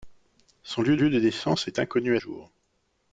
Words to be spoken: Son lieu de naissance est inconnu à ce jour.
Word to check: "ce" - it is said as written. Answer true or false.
false